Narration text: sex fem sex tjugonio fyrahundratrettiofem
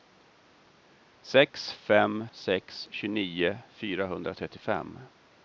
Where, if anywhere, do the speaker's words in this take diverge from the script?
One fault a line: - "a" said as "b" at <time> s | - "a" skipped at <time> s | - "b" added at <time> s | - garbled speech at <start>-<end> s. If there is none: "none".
none